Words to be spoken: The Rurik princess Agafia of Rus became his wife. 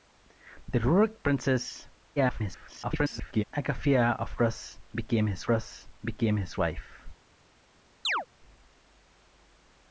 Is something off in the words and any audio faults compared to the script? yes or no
yes